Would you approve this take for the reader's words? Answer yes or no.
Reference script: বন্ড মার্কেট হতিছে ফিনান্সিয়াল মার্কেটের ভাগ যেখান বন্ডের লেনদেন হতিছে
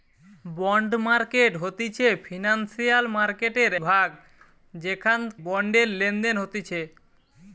yes